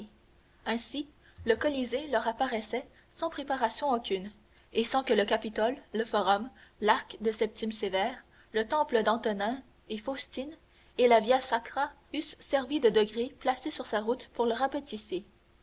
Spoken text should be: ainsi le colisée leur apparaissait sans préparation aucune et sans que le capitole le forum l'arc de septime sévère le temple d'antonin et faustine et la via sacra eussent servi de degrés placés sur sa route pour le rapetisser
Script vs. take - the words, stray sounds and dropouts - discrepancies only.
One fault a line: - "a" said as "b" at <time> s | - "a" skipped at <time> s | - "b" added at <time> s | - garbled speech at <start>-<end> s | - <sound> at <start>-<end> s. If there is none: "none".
none